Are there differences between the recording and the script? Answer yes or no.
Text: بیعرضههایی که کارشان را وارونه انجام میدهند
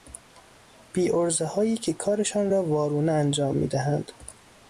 no